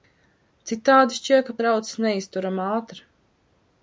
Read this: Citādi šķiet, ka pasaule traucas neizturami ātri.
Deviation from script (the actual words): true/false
true